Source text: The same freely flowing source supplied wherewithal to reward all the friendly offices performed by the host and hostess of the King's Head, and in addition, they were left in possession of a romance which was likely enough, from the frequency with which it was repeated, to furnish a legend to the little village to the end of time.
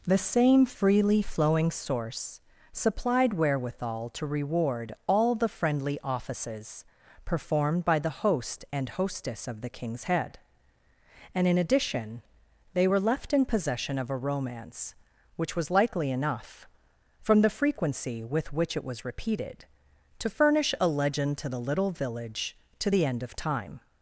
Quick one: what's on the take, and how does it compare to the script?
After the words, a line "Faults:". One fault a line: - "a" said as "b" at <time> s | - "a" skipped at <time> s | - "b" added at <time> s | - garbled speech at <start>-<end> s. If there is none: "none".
The same freely flowing source supplied wherewithal to reward all the friendly offices performed by the host and hostess of the King's Head, and in addition, they were left in possession of a romance which was likely enough, from the frequency with which it was repeated, to furnish a legend to the little village to the end of time.
Faults:
none